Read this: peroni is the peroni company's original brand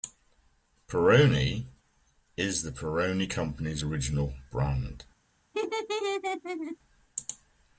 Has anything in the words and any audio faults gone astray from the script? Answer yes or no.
yes